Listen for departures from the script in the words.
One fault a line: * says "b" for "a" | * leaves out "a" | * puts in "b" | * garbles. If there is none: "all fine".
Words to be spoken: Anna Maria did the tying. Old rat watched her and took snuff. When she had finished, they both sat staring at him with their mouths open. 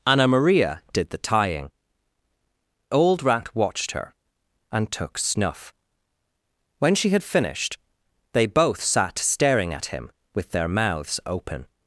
all fine